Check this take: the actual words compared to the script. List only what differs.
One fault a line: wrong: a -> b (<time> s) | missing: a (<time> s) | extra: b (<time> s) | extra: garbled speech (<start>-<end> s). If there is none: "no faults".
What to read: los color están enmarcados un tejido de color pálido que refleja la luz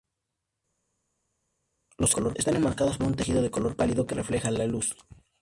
no faults